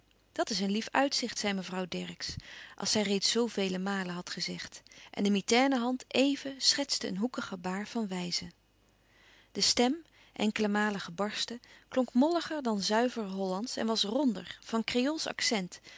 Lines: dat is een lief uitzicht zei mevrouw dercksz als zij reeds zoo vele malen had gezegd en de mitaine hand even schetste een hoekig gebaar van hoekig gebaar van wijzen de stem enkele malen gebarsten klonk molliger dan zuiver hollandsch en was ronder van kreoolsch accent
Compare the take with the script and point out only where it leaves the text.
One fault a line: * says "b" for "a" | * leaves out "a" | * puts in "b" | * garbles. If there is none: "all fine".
* leaves out "hoekig gebaar van"